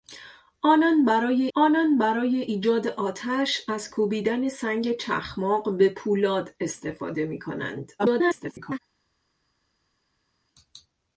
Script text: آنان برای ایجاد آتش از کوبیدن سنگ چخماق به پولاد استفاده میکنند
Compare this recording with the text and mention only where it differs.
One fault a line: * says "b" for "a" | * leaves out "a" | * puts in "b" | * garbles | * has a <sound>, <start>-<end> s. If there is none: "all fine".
* puts in "آنان برای"
* garbles